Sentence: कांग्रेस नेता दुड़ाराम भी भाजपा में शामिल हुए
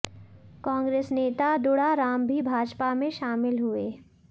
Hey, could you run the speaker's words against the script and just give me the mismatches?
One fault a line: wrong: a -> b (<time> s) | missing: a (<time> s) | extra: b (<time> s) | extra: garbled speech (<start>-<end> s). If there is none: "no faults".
no faults